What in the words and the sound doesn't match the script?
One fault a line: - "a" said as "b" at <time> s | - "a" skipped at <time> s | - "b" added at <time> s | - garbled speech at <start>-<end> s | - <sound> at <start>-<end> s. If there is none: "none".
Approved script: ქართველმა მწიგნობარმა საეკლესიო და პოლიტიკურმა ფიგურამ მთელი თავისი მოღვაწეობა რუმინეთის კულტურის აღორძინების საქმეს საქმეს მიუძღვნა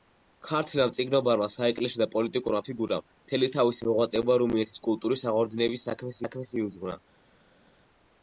none